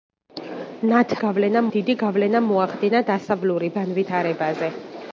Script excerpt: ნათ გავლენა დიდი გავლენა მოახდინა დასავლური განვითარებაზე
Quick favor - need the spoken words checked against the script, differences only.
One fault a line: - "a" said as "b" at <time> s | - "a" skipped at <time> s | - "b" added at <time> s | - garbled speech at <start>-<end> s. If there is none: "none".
none